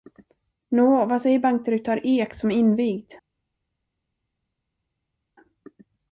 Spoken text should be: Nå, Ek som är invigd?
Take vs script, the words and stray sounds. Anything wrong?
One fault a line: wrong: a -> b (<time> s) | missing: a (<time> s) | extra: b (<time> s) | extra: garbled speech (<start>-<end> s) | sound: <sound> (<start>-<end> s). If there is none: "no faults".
extra: vad säger bankdirektör (1.1 s)